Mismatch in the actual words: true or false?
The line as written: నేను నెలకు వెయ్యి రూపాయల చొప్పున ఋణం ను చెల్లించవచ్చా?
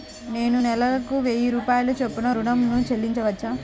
false